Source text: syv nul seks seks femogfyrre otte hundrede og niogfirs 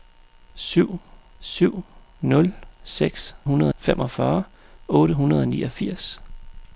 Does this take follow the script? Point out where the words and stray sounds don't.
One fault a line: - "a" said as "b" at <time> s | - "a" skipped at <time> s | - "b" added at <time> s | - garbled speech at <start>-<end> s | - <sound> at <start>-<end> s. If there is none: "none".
- "syv" added at 1.4 s
- "seks" said as "hundrede" at 3.4 s